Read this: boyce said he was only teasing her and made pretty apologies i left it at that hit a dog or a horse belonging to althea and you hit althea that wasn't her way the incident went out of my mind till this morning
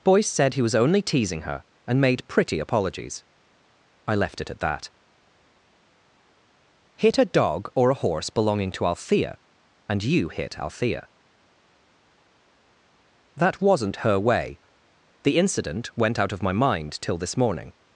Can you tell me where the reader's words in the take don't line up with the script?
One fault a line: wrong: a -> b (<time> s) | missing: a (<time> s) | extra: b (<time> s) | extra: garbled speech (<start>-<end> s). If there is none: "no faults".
no faults